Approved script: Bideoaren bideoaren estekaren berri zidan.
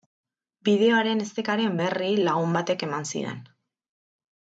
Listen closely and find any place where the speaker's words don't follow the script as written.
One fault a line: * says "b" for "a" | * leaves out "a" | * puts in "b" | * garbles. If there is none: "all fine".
* leaves out "bideoaren"
* puts in "lagun batek eman"